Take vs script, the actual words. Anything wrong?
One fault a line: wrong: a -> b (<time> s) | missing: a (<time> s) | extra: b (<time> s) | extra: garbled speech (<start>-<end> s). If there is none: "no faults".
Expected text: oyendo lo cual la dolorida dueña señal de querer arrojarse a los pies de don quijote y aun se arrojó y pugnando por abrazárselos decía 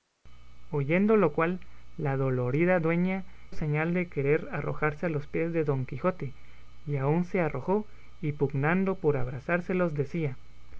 no faults